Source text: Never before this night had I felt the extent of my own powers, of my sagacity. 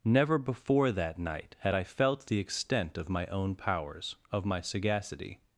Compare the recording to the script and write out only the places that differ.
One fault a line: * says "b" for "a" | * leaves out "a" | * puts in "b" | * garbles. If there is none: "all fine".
* says "that" for "this"